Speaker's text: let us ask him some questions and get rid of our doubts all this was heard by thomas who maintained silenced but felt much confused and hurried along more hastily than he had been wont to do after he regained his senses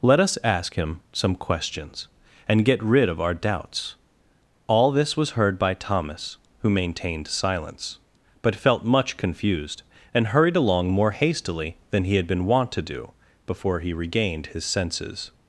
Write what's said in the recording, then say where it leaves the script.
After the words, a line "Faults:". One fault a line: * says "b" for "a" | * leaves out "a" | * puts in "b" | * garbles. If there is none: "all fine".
let us ask him some questions and get rid of our doubts all this was heard by thomas who maintained silence but felt much confused and hurried along more hastily than he had been wont to do before he regained his senses
Faults:
* says "silence" for "silenced"
* says "before" for "after"